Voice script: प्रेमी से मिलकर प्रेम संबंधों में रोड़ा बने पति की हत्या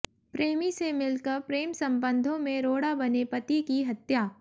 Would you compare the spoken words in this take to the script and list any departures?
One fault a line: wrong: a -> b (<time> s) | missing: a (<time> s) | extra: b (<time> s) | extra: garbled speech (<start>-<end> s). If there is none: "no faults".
no faults